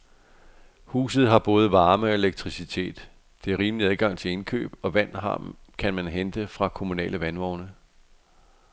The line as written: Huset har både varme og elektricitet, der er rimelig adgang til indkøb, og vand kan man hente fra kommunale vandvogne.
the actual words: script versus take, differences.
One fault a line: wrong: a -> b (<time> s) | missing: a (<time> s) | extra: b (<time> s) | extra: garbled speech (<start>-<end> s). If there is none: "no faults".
no faults